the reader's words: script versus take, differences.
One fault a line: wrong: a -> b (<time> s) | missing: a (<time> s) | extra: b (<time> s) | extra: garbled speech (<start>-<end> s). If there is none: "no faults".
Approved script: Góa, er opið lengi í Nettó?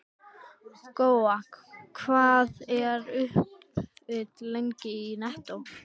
extra: hvað (2.0 s)